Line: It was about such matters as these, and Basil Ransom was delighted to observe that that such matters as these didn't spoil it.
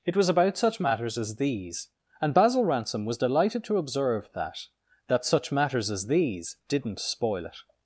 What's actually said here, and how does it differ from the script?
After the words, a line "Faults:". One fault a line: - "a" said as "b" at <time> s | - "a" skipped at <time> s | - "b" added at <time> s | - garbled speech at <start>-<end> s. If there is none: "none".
It was about such matters as these, and Basil Ransom was delighted to observe that that such matters as these didn't spoil it.
Faults:
none